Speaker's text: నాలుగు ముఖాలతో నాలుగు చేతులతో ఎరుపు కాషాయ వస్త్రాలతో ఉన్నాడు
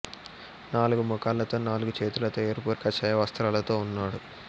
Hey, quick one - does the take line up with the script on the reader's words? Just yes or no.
yes